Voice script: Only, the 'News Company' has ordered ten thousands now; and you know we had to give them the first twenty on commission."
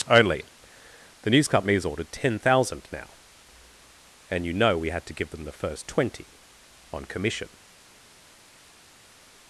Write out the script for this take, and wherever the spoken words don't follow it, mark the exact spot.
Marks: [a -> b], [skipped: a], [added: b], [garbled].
Only, the 'News Company' has ordered ten [thousands -> thousand] now; and you know we had to give them the first twenty on commission."